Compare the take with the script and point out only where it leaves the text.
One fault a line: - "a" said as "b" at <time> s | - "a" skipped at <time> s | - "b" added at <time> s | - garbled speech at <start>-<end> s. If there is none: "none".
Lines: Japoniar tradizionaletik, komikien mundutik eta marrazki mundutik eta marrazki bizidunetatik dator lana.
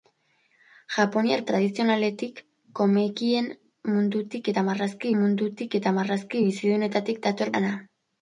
none